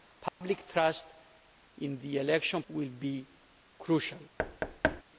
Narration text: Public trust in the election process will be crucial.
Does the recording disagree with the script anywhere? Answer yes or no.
yes